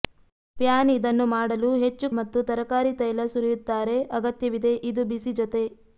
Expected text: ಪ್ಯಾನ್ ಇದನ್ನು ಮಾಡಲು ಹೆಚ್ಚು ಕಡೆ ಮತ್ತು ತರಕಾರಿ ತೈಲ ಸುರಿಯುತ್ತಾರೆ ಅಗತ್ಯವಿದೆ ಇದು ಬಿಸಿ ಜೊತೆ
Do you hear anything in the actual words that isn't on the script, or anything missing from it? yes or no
yes